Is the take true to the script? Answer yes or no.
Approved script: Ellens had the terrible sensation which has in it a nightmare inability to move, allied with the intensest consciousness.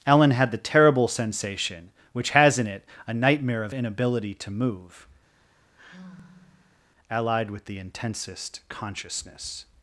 no